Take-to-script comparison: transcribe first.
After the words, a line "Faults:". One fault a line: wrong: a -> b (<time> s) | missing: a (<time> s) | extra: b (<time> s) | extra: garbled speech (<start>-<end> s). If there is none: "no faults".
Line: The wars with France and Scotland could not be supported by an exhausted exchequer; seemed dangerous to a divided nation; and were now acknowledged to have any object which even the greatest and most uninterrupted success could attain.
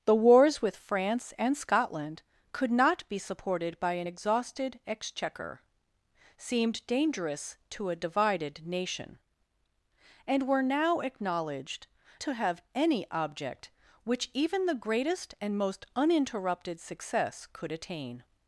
The wars with France and Scotland could not be supported by an exhausted exchequer; seemed dangerous to a divided nation; and were now acknowledged to have any object which even the greatest and most uninterrupted success could attain.
Faults:
no faults